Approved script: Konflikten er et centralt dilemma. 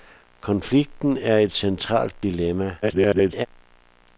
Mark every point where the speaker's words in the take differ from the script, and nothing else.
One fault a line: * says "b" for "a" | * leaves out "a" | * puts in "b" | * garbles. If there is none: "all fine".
* garbles